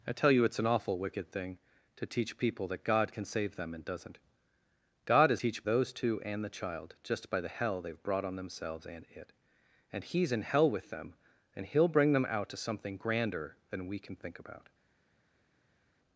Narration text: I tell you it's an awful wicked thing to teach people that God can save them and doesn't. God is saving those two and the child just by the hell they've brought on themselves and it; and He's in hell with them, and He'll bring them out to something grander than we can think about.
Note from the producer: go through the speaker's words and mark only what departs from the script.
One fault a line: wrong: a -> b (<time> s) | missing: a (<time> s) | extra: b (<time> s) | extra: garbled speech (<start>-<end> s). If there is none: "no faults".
wrong: saving -> teach (5.3 s)